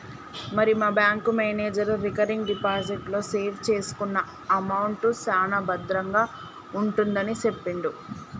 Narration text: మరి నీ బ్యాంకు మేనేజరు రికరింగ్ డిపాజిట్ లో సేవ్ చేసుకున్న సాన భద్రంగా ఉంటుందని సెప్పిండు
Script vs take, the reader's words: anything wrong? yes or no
yes